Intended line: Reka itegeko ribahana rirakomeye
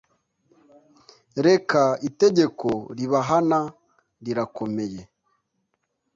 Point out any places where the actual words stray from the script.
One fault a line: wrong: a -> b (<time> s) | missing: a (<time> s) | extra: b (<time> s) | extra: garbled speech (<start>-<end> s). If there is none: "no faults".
no faults